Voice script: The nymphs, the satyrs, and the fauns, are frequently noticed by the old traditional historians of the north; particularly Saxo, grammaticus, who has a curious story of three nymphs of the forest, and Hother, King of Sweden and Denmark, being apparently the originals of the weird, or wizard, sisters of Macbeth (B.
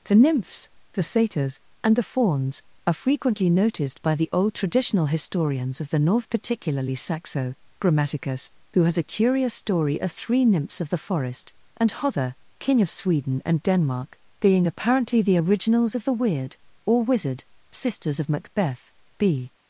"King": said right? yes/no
yes